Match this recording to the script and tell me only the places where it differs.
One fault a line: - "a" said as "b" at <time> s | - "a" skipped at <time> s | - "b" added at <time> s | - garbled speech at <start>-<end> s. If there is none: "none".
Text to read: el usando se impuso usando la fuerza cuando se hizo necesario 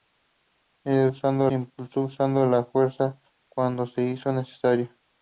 none